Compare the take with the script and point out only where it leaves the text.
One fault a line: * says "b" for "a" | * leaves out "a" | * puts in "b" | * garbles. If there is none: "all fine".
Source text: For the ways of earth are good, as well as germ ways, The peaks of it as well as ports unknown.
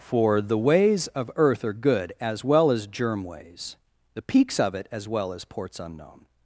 all fine